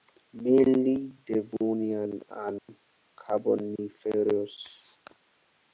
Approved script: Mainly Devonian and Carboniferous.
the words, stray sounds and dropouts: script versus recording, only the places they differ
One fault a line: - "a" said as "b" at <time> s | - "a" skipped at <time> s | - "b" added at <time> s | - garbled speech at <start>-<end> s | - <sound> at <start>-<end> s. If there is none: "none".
- dropout at 2.6-2.7 s